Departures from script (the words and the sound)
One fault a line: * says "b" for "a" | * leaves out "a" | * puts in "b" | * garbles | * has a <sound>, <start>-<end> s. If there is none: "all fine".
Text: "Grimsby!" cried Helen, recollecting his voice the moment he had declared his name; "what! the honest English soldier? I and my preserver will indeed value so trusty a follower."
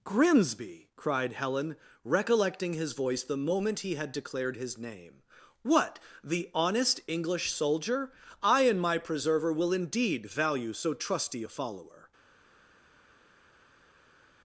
all fine